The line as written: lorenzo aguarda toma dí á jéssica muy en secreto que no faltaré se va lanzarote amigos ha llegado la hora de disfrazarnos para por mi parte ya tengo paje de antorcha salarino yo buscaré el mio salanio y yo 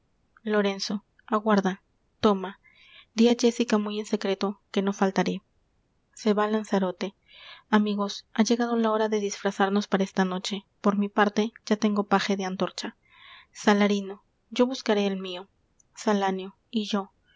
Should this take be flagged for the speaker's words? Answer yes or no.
yes